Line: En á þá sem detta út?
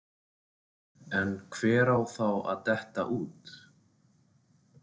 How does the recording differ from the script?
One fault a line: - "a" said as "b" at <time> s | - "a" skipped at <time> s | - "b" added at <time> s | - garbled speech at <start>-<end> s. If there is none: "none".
- "hver" added at 1.6 s
- "sem" said as "að" at 2.5 s